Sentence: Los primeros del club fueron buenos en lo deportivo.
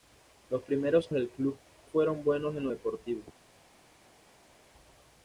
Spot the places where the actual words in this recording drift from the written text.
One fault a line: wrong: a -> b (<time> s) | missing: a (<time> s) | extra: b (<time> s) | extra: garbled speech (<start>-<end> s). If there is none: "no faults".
no faults